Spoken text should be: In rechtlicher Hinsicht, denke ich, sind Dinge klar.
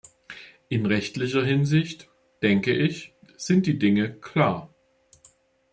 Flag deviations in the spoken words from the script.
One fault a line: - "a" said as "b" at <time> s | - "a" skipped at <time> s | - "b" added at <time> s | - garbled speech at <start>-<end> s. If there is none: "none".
- "die" added at 3.7 s